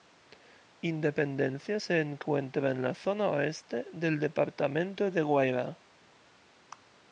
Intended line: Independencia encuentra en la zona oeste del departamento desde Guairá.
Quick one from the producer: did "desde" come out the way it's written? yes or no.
no